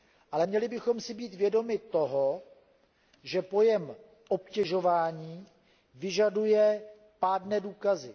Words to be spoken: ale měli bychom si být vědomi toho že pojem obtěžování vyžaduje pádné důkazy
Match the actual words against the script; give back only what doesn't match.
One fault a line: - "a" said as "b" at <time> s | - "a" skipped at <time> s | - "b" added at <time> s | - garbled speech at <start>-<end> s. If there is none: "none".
none